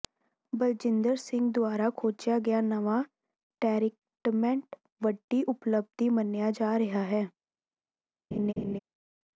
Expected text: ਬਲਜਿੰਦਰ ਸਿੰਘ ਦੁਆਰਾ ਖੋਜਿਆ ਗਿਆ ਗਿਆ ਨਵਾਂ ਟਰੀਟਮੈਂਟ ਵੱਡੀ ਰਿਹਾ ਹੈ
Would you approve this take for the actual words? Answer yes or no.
no